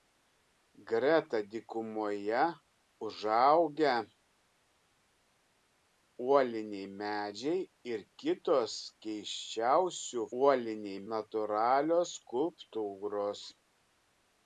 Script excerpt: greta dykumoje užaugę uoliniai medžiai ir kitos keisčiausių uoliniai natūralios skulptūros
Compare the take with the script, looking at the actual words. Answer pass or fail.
pass